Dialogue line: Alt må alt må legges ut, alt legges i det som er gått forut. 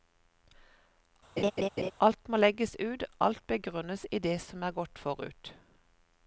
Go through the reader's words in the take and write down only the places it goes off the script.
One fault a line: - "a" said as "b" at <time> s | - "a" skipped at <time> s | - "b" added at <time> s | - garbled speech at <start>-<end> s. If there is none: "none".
- "alt må" skipped at 2.4 s
- "legges" said as "begrunnes" at 3.5 s